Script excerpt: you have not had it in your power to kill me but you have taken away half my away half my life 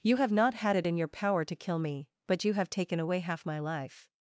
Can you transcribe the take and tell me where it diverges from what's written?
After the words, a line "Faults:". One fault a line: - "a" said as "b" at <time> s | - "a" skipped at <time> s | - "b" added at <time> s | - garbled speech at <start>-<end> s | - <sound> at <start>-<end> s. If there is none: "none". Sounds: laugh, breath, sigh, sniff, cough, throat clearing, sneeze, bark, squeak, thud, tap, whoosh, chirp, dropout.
you have not had it in your power to kill me but you have taken away half my life
Faults:
- "away half my" skipped at 3.6 s